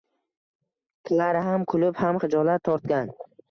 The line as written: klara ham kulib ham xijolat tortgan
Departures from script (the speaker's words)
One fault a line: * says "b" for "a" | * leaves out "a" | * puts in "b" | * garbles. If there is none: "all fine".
all fine